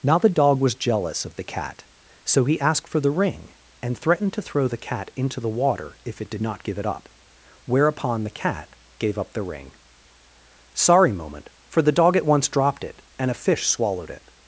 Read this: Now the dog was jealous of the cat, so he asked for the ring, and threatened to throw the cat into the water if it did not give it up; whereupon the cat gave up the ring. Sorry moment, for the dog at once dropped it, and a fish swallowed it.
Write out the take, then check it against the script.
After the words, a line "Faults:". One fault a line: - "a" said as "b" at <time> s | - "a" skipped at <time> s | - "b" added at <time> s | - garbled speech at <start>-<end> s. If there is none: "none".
Now the dog was jealous of the cat, so he asked for the ring, and threatened to throw the cat into the water if it did not give it up; whereupon the cat gave up the ring. Sorry moment, for the dog at once dropped it, and a fish swallowed it.
Faults:
none